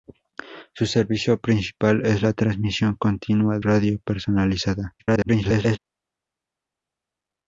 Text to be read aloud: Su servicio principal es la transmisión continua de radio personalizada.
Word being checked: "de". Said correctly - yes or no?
no